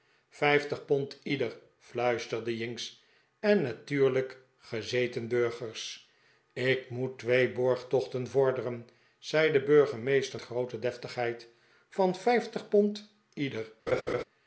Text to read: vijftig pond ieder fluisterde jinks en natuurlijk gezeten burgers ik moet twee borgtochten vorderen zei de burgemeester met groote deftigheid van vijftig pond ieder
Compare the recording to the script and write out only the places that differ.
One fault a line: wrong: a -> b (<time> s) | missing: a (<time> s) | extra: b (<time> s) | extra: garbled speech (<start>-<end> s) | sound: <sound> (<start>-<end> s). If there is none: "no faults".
missing: met (10.4 s)
sound: laugh (13.9-14.2 s)